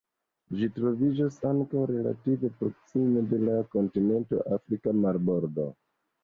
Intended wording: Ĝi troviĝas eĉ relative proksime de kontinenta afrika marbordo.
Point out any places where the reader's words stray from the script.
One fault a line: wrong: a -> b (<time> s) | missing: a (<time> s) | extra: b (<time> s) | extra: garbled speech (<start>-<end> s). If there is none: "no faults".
wrong: eĉ -> ankaŭ (1.5 s)
extra: la (3.5 s)